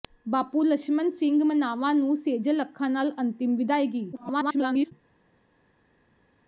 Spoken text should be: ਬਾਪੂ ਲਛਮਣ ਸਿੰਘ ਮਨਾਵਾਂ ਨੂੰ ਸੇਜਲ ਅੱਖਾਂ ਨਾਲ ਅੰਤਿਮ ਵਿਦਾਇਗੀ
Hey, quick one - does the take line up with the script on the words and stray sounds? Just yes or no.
no